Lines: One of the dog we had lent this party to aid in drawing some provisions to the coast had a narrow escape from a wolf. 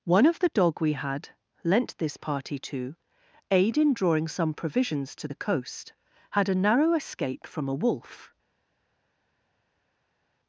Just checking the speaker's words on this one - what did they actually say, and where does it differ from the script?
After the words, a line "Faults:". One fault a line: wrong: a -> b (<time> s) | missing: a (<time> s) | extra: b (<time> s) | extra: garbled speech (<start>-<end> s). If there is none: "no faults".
One of the dog we had lent this party to aid in drawing some provisions to the coast had a narrow escape from a wolf.
Faults:
no faults